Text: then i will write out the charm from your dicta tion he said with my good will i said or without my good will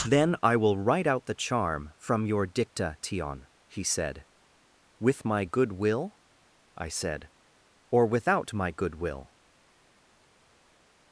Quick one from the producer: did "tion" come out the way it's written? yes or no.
yes